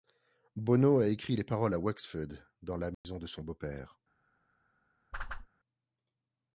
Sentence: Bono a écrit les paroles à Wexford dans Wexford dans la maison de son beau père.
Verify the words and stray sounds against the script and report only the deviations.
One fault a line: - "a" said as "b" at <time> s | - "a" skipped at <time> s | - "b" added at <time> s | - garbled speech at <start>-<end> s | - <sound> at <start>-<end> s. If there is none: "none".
- "Wexford dans" skipped at 2.8 s
- dropout at 2.9-3.0 s
- whoosh at 5.1-5.5 s